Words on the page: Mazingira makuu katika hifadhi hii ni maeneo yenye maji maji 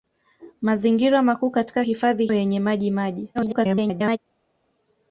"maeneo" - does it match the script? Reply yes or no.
no